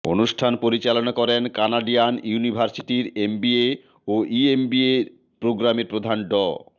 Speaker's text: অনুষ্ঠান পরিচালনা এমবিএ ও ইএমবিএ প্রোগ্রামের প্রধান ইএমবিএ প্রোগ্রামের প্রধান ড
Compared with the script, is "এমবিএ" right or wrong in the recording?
wrong